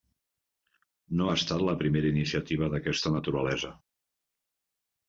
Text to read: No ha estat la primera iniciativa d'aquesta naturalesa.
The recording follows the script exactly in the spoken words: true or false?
true